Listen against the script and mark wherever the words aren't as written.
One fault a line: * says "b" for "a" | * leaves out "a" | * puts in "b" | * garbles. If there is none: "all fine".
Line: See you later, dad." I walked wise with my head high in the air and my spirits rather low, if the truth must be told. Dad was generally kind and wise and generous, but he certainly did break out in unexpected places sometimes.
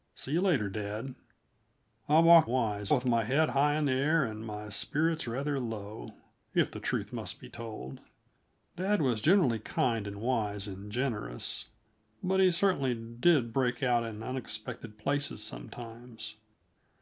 all fine